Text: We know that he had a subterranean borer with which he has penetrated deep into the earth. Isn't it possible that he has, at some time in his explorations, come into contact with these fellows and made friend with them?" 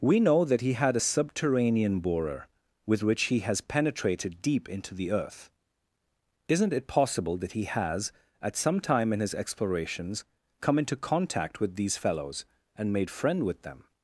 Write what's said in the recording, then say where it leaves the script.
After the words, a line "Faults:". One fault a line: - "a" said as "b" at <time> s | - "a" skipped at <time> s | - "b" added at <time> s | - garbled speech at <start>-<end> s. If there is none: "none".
We know that he had a subterranean borer with which he has penetrated deep into the earth. Isn't it possible that he has, at some time in his explorations, come into contact with these fellows and made friend with them?"
Faults:
none